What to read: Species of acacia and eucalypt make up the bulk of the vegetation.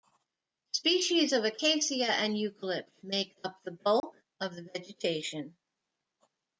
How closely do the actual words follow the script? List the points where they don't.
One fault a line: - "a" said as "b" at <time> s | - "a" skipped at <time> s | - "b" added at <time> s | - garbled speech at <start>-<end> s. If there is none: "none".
none